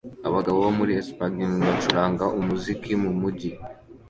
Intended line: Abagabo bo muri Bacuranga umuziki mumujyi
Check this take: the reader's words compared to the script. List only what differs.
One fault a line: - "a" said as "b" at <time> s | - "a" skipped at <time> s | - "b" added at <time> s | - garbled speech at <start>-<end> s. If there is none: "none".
- "Espagne" added at 1.0 s